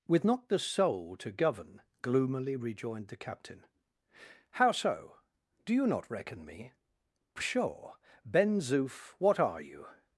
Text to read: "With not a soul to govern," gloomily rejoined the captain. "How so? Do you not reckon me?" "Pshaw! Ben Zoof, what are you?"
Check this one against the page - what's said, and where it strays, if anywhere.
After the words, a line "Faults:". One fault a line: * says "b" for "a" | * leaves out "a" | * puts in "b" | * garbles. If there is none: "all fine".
"With not the soul to govern," gloomily rejoined the captain. "How so? Do you not reckon me?" "Pshaw! Ben Zoof, what are you?"
Faults:
* says "the" for "a"